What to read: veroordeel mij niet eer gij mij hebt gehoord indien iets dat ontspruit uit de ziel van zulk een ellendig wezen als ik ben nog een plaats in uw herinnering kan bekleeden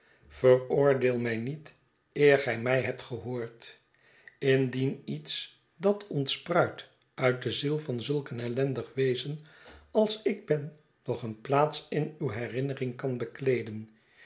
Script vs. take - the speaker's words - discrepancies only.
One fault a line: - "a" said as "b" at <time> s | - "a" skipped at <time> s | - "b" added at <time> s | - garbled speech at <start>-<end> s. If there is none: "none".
none